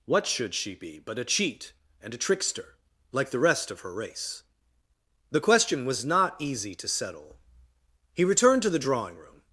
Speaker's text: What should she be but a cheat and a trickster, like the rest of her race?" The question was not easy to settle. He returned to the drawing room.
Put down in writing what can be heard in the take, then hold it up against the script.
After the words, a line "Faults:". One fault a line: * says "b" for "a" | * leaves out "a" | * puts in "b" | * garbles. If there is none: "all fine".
What should she be but a cheat and a trickster, like the rest of her race?" The question was not easy to settle. He returned to the drawing room.
Faults:
all fine